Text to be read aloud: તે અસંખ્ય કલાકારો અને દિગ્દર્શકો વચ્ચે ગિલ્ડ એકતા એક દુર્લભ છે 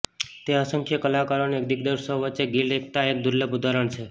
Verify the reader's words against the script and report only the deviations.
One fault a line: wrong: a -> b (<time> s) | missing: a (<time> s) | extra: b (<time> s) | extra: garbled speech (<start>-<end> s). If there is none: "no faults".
extra: ઉદાહરણ (3.6 s)